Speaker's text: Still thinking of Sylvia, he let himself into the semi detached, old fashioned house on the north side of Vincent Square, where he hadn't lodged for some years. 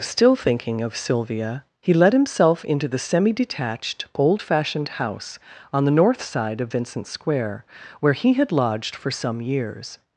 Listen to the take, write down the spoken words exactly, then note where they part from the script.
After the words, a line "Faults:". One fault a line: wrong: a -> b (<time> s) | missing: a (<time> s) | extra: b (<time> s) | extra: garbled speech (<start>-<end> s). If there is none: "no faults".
Still thinking of Sylvia, he let himself into the semi detached, old fashioned house on the north side of Vincent Square, where he had lodged for some years.
Faults:
wrong: hadn't -> had (8.3 s)